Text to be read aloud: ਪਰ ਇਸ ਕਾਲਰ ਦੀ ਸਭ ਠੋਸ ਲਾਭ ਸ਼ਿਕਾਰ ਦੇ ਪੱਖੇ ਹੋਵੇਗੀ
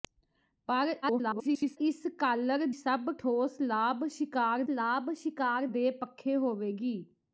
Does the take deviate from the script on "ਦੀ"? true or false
true